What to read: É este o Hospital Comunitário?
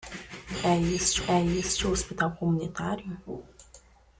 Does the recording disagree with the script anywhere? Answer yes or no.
yes